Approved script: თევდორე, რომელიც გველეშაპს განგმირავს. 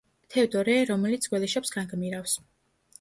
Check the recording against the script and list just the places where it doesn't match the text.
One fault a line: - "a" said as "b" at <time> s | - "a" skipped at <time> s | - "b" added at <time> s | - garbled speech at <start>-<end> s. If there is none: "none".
none